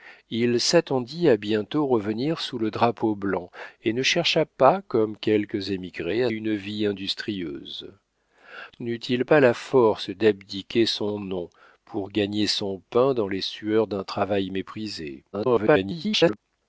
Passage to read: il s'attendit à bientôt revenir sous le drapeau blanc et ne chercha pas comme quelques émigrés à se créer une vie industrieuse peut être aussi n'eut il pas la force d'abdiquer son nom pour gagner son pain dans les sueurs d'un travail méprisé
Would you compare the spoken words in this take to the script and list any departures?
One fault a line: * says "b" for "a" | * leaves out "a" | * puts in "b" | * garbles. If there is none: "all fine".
* leaves out "se créer"
* leaves out "peut être aussi"
* garbles